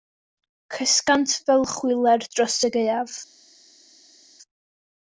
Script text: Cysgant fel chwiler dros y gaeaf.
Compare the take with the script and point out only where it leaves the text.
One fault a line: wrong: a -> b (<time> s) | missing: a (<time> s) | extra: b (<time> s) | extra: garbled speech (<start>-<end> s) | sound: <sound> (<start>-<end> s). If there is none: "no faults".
no faults